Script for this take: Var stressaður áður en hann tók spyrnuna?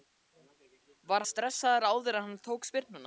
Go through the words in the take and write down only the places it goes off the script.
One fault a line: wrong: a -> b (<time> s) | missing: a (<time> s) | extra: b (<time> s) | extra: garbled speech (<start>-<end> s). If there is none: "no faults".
no faults